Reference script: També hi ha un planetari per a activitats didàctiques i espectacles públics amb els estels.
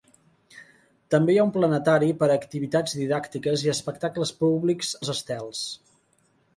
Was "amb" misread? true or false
true